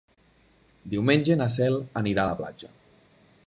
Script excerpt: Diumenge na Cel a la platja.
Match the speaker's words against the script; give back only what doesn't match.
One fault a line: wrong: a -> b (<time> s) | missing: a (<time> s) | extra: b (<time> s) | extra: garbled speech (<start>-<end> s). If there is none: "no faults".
extra: anirà (2.0 s)